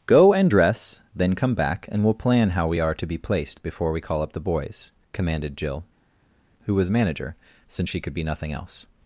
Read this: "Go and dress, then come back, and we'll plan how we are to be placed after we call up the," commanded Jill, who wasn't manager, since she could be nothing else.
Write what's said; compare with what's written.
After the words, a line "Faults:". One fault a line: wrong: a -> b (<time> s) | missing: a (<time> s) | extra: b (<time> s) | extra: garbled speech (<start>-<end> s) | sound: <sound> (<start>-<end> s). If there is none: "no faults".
"Go and dress, then come back, and we'll plan how we are to be placed before we call up the boys," commanded Jill, who was manager, since she could be nothing else.
Faults:
wrong: after -> before (3.6 s)
extra: boys (4.4 s)
wrong: wasn't -> was (6.7 s)